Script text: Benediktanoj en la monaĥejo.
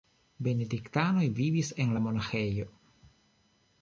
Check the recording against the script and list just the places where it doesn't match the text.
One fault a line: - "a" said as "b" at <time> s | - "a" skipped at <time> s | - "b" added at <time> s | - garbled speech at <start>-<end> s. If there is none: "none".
- "vivis" added at 1.4 s